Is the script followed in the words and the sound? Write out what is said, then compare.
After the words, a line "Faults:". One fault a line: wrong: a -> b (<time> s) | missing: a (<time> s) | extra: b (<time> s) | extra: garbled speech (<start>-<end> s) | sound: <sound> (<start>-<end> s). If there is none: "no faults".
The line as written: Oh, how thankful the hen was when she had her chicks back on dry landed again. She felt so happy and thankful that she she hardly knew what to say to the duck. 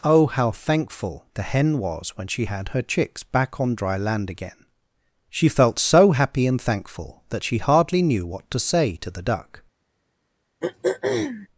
Oh, how thankful the hen was when she had her chicks back on dry land again. She felt so happy and thankful that she hardly knew what to say to the duck.
Faults:
wrong: landed -> land (4.0 s)
missing: she (7.6 s)
sound: throat clearing (10.6-11.5 s)